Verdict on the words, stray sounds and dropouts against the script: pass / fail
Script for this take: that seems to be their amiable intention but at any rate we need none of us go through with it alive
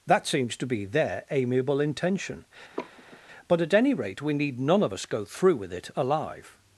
fail